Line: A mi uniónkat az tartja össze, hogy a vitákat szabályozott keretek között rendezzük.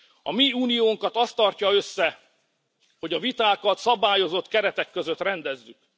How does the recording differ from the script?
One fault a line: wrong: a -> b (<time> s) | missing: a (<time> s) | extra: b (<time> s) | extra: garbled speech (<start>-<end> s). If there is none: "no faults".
no faults